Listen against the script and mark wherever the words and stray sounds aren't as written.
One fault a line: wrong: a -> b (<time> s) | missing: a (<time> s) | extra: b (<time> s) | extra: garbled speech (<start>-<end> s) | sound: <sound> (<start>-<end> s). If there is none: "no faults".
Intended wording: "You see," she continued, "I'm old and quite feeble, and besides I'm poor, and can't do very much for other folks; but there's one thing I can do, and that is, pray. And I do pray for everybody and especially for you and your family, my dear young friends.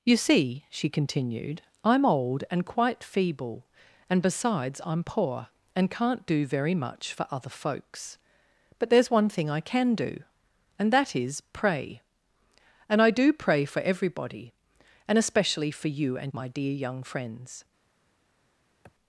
missing: your family (16.3 s)
sound: sniff (18.8-18.9 s)